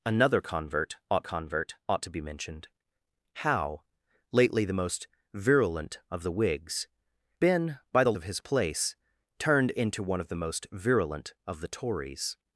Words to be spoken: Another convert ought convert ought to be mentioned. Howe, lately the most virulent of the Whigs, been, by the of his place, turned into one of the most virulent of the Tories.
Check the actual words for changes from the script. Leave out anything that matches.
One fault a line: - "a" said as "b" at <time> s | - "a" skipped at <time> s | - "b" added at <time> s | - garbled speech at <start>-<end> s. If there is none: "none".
none